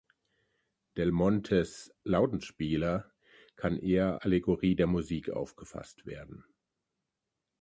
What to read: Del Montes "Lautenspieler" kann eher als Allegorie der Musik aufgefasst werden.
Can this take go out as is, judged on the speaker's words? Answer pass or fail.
fail